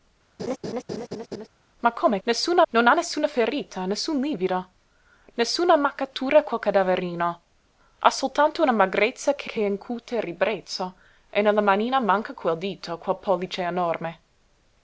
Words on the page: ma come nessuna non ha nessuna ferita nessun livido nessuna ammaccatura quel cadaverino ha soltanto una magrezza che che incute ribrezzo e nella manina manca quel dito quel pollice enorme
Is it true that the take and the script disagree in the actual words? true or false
false